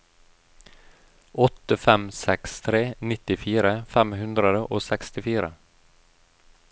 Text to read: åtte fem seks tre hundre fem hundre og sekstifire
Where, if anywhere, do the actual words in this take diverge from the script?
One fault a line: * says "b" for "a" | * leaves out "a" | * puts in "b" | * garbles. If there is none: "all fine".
* says "nittifire" for "hundre"